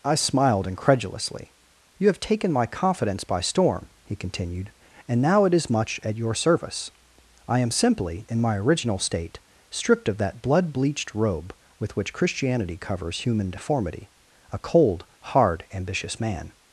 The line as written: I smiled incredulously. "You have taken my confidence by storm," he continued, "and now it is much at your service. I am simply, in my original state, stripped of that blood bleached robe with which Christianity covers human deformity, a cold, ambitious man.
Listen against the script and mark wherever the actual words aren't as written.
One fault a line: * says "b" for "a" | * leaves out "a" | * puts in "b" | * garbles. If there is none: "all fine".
* puts in "hard"